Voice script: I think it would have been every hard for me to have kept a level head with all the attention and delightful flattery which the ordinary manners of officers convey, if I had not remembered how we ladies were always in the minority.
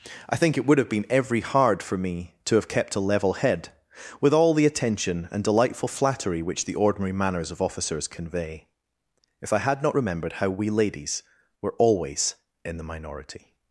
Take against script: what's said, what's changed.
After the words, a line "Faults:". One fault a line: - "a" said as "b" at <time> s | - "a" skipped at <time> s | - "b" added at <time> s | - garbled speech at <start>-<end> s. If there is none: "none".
I think it would have been every hard for me to have kept a level head with all the attention and delightful flattery which the ordinary manners of officers convey, if I had not remembered how we ladies were always in the minority.
Faults:
none